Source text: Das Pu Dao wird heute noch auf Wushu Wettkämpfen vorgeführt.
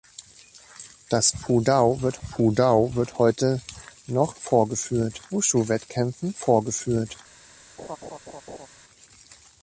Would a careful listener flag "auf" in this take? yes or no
yes